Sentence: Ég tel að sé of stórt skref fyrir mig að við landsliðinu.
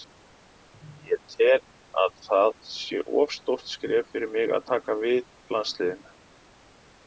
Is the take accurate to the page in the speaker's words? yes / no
no